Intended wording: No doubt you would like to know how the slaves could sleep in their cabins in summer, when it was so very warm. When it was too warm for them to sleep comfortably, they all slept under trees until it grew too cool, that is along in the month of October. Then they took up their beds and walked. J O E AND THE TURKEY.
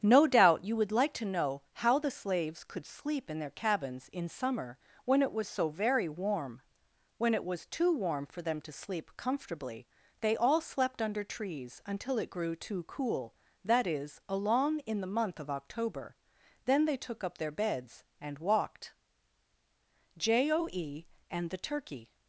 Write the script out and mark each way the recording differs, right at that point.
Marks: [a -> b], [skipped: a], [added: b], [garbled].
No doubt you would like to know how the slaves could sleep in their cabins in summer, when it was so very warm. When it was too warm for them to sleep comfortably, they all slept under trees until it grew too cool, that is along in the month of October. Then they took up their beds and walked. J O E AND THE TURKEY.